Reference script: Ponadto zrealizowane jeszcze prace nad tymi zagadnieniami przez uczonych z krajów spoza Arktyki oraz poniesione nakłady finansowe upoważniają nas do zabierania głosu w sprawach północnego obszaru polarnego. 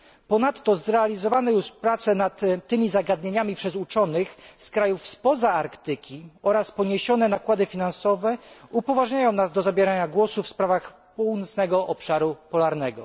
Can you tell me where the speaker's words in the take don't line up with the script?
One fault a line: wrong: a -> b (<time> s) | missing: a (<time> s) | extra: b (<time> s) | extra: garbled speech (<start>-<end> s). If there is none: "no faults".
wrong: jeszcze -> już (1.5 s)